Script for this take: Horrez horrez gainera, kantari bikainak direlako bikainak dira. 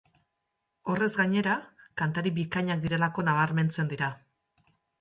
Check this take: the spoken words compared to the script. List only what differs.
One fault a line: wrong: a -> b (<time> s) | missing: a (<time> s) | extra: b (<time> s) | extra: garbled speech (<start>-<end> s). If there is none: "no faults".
missing: horrez (1.1 s)
wrong: bikainak -> nabarmentzen (3.3 s)